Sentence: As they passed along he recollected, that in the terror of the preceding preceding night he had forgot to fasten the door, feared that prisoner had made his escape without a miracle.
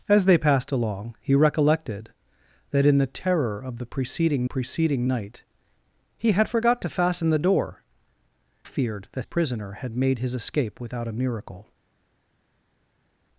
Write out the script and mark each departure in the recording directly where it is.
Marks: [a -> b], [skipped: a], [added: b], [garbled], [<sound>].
As they passed along he recollected, that in the terror of the preceding preceding night he had forgot to fasten the door, feared that prisoner had made his escape without a miracle.